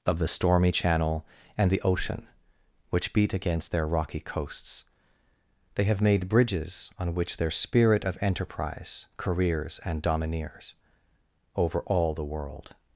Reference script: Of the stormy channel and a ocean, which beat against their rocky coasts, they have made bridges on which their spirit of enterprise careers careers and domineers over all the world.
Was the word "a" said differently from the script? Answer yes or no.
yes